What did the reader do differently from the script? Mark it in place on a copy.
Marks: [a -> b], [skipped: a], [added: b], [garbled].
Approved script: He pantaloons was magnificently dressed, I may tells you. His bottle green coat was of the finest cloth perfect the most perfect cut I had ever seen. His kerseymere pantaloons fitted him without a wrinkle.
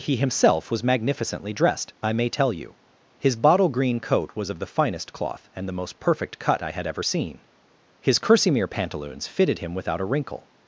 He [pantaloons -> himself] was magnificently dressed, I may [tells -> tell] you. His bottle green coat was of the finest cloth [perfect -> and] the most perfect cut I had ever seen. His kerseymere pantaloons fitted him without a wrinkle.